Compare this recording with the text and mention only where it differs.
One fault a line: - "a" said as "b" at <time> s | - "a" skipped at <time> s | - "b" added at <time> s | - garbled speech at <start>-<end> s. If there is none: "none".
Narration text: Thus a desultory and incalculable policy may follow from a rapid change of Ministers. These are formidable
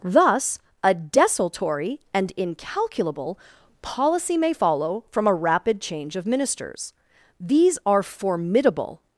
none